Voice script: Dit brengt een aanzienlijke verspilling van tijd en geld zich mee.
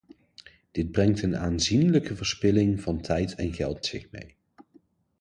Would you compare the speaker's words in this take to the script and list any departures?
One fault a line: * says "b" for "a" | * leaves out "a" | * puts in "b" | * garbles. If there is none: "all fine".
all fine